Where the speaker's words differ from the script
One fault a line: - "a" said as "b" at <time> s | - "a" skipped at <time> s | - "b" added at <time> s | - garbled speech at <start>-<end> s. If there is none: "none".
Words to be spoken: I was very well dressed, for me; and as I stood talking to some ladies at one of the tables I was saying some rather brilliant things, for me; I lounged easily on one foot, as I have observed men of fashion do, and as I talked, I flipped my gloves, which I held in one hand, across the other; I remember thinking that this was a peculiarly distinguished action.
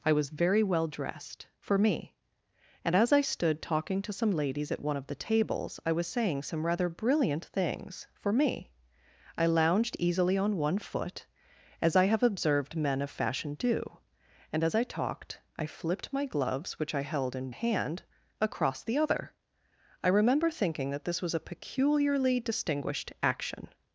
- "one" skipped at 17.5 s